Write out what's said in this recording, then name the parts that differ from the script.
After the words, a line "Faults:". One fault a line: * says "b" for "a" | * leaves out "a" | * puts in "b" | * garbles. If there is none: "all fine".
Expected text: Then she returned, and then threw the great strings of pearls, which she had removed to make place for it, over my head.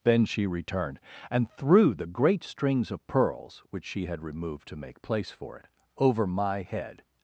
Then she returned, and threw the great strings of pearls, which she had removed to make place for it, over my head.
Faults:
* leaves out "then"